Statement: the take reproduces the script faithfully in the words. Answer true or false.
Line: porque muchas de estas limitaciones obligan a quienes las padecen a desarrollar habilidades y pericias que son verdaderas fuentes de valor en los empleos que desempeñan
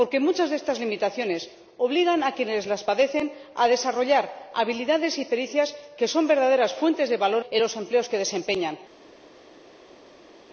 true